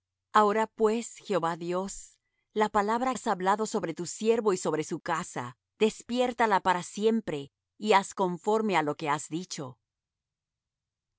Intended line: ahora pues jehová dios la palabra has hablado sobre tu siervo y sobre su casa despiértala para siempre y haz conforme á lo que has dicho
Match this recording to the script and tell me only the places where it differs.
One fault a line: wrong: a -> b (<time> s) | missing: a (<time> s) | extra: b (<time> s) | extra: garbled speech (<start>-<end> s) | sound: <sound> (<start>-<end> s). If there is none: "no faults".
no faults